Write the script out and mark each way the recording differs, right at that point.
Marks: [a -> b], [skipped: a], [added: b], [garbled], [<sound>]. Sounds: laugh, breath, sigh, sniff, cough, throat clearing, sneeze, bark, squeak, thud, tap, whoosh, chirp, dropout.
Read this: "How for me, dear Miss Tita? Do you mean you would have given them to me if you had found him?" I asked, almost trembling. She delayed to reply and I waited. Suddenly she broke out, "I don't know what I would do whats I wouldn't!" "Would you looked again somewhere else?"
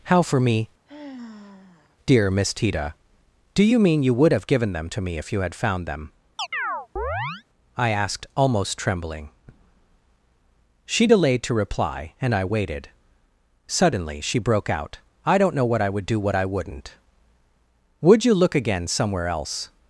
"How for me, [sigh] dear Miss Tita? Do you mean you would have given them to me if you had found [him?" -> them] [chirp] I asked, almost trembling. She delayed to reply and I waited. Suddenly she broke out, "I don't know what I would do [whats -> what] I wouldn't!" "Would you [looked -> look] again somewhere else?"